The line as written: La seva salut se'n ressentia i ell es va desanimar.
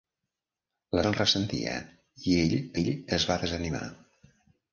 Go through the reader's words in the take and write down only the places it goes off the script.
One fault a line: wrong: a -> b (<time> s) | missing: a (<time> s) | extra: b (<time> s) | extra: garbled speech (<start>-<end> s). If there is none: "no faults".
missing: seva salut (1.0 s)
extra: ell (2.8 s)